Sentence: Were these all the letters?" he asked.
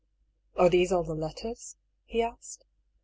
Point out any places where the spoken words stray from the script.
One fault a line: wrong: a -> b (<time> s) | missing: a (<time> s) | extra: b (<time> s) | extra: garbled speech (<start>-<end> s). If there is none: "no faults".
wrong: Were -> Are (0.6 s)